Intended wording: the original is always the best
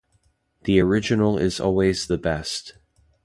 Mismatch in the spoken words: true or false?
false